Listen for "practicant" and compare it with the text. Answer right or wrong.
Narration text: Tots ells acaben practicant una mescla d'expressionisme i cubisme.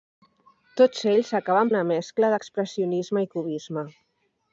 wrong